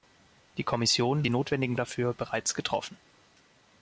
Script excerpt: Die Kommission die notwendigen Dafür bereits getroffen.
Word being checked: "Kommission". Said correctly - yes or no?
yes